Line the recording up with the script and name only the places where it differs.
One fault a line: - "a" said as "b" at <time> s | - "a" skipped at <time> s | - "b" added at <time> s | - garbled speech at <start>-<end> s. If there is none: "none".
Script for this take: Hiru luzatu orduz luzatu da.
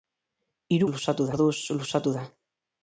none